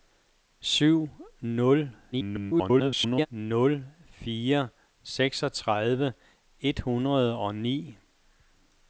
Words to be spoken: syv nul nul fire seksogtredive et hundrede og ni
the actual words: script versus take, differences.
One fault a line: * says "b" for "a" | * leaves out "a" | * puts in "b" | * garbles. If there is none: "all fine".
* garbles